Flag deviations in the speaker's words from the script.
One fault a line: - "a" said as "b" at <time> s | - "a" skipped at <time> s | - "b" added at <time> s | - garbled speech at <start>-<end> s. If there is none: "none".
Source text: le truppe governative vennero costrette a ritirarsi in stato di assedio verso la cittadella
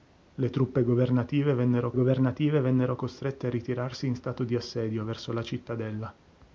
- "governative vennero" added at 1.9 s